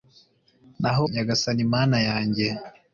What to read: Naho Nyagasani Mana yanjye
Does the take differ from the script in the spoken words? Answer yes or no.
no